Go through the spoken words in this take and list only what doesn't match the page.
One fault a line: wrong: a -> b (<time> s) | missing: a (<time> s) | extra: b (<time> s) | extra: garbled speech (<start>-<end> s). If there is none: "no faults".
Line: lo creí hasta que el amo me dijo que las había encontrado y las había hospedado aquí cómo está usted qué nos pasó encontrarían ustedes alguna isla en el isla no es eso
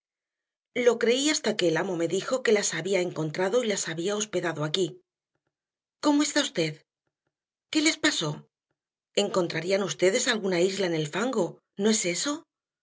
wrong: nos -> les (7.8 s)
wrong: isla -> fango (11.1 s)